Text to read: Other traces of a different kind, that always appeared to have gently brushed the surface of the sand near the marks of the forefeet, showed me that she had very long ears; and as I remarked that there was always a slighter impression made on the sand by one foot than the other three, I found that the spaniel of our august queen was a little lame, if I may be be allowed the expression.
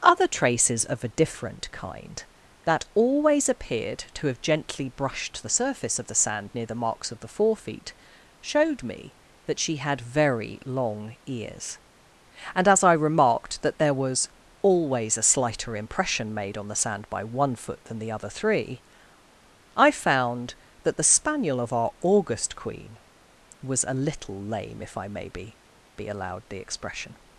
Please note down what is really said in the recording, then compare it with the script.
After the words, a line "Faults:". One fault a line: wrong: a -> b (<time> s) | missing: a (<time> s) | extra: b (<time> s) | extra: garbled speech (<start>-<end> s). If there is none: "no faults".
Other traces of a different kind, that always appeared to have gently brushed the surface of the sand near the marks of the forefeet, showed me that she had very long ears; and as I remarked that there was always a slighter impression made on the sand by one foot than the other three, I found that the spaniel of our august queen was a little lame, if I may be be allowed the expression.
Faults:
no faults